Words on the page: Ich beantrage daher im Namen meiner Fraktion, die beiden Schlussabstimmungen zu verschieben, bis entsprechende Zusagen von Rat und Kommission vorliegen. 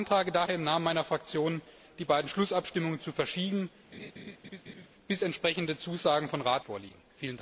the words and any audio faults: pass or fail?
fail